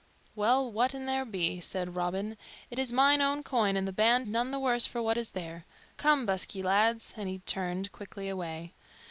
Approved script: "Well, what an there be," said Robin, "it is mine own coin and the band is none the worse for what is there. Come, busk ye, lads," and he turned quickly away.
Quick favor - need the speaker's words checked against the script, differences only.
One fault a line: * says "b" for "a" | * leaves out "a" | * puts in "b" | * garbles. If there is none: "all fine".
* leaves out "is"